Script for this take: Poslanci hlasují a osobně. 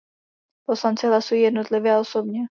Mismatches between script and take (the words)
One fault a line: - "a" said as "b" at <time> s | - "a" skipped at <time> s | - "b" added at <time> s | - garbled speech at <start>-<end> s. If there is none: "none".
- "jednotlivě" added at 1.4 s